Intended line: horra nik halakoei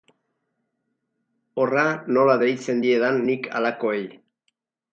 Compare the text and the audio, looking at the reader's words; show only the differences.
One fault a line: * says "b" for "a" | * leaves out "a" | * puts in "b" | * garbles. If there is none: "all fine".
* puts in "nola deitzen diedan"